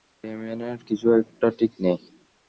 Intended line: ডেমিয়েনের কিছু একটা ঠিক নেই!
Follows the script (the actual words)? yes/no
yes